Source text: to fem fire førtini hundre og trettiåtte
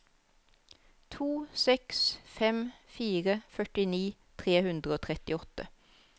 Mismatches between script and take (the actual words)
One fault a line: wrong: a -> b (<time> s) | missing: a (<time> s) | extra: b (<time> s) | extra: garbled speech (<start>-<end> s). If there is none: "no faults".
extra: seks (1.6 s)
extra: tre (4.4 s)